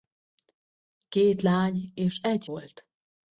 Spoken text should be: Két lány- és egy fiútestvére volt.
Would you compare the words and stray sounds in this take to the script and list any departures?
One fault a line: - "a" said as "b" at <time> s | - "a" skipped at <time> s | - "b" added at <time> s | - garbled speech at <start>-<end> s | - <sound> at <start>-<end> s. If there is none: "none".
- "fiútestvére" skipped at 2.5 s